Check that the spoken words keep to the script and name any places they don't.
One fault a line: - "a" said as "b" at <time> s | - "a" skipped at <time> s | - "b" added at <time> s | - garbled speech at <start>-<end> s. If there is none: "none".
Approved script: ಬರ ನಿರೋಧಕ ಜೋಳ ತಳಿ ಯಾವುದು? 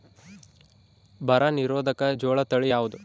none